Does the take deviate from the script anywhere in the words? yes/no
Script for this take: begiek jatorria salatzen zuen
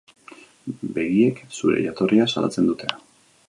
yes